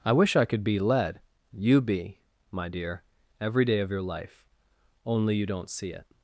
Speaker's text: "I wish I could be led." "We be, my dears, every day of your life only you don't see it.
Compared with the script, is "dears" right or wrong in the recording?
wrong